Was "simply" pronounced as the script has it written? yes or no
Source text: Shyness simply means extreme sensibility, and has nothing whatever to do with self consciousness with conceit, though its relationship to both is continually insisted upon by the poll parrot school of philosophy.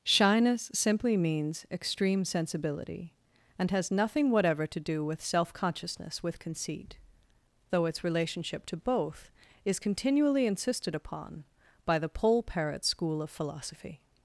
yes